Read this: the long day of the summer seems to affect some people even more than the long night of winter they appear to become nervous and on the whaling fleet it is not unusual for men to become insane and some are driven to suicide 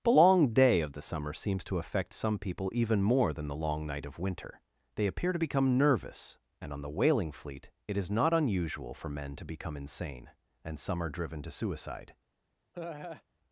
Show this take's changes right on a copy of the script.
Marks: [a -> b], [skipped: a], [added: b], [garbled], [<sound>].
the long day of the summer seems to affect some people even more than the long night of winter they appear to become nervous and on the whaling fleet it is not unusual for men to become insane and some are driven to suicide [laugh]